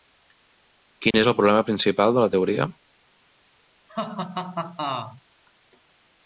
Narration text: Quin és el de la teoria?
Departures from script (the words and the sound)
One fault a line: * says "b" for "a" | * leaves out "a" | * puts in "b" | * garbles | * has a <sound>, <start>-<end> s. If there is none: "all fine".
* has a dropout, 1.1-1.1 s
* puts in "problema principal"
* has a laugh, 3.9-5.2 s